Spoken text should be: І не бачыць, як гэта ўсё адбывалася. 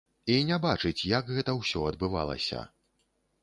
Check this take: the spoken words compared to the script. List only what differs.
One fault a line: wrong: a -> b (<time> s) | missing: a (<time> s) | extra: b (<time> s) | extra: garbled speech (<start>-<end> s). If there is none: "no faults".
no faults